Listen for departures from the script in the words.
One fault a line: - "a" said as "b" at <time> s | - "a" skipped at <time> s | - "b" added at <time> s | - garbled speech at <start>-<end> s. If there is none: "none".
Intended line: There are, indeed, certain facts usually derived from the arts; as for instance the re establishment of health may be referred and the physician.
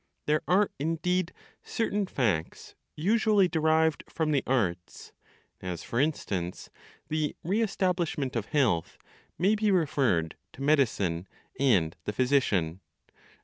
- "to medicine" added at 10.5 s